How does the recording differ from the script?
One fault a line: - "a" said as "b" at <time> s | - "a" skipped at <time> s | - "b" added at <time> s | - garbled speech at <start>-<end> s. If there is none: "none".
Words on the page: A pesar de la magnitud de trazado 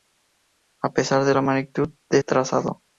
none